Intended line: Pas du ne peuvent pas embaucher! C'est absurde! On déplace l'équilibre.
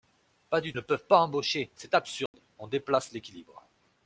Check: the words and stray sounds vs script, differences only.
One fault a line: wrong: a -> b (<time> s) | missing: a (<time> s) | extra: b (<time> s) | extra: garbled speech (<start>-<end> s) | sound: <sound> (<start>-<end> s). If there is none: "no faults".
sound: dropout (2.3-2.3 s)